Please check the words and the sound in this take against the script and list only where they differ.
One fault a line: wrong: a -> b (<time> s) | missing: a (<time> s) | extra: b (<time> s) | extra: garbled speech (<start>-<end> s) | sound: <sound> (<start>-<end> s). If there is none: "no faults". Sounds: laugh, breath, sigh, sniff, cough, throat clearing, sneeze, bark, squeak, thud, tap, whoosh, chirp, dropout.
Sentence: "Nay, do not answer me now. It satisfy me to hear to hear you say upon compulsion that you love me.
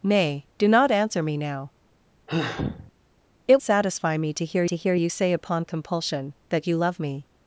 sound: sigh (2.3-2.9 s)